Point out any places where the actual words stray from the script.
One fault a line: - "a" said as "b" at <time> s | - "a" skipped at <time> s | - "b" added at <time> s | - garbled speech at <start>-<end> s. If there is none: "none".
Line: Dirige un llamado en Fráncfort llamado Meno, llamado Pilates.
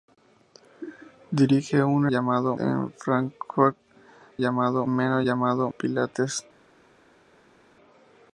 none